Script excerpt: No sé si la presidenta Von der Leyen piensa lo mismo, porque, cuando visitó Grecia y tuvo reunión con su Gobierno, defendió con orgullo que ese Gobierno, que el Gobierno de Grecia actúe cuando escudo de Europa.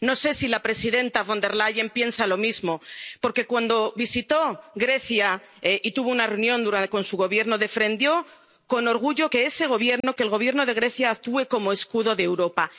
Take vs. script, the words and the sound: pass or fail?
fail